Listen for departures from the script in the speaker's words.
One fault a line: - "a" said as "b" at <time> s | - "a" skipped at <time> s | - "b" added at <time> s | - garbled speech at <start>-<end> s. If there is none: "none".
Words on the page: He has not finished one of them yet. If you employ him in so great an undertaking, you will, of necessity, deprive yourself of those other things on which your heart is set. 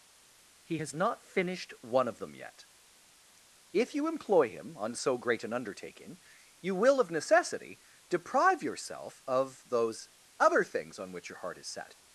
- "in" said as "on" at 4.8 s